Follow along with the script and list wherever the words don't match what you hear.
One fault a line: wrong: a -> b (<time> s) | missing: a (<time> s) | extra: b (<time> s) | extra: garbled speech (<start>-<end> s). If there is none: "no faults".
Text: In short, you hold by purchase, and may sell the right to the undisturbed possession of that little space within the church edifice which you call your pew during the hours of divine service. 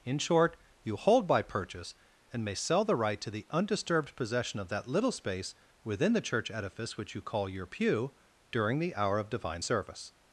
wrong: hours -> hour (8.9 s)